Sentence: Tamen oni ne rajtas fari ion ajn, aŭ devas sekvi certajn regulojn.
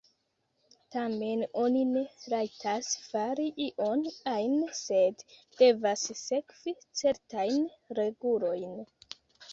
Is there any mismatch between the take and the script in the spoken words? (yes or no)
yes